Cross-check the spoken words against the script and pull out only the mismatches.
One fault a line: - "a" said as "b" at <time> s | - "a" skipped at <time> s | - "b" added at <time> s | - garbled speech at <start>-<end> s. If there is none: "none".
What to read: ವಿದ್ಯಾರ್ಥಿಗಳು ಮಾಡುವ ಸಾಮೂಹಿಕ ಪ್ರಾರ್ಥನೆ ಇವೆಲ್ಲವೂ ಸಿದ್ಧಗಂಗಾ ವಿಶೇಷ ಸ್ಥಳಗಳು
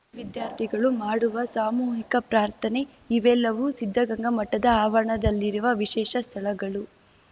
- "ಮಠದ ಆವರಣದಲ್ಲಿರುವ" added at 4.3 s